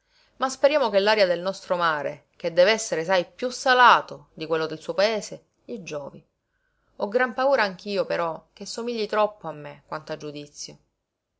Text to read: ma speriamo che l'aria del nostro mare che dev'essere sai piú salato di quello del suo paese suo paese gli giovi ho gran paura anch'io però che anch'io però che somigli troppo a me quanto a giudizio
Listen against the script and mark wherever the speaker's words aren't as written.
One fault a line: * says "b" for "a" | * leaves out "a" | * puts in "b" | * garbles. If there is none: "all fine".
* leaves out "suo paese"
* leaves out "anch'io però che"